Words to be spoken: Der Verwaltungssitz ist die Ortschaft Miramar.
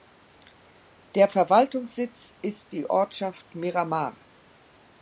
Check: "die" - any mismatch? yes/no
no